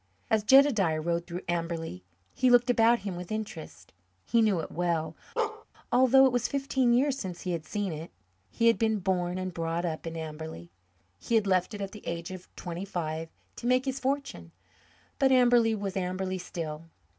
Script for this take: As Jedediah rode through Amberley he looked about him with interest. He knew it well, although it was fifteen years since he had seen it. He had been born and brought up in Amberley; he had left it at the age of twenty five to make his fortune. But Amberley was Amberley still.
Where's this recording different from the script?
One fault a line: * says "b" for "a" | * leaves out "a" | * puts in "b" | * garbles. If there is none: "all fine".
all fine